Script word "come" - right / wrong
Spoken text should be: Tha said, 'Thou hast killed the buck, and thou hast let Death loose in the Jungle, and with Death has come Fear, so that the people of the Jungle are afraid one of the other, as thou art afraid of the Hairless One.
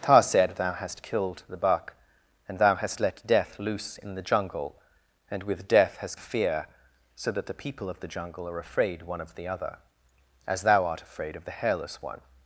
wrong